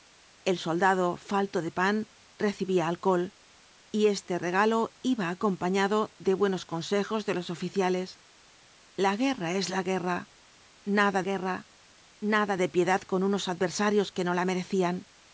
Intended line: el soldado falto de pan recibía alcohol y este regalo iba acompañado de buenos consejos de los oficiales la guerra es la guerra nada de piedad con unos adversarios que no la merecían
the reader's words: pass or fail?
fail